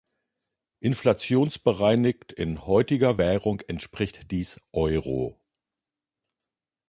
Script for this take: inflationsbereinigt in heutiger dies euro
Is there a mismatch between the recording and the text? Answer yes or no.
yes